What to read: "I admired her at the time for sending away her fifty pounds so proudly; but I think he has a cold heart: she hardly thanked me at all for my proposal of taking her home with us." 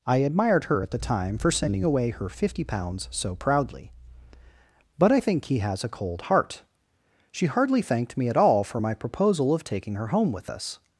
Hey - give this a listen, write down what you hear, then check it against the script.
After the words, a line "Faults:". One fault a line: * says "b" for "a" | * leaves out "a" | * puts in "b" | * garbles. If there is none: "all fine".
"I admired her at the time for sending away her fifty pounds so proudly; but I think he has a cold heart: she hardly thanked me at all for my proposal of taking her home with us."
Faults:
all fine